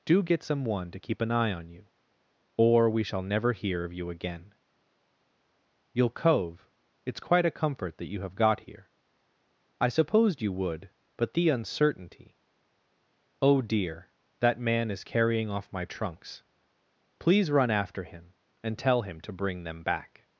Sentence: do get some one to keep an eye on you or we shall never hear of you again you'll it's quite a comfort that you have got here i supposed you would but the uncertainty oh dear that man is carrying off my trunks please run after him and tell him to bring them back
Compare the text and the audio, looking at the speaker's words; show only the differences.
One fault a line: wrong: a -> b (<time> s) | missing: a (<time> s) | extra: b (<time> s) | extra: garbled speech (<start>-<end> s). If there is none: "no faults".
extra: cove (6.1 s)